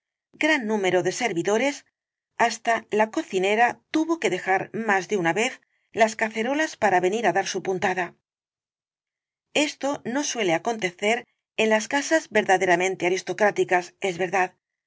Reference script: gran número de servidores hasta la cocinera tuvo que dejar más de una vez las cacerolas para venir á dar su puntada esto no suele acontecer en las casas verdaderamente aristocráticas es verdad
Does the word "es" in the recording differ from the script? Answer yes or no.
no